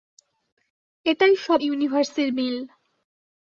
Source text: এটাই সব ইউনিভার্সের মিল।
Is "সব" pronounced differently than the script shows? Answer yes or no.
no